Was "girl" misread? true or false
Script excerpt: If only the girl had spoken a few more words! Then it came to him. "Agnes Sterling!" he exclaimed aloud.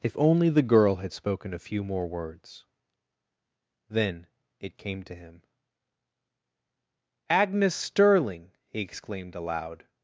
false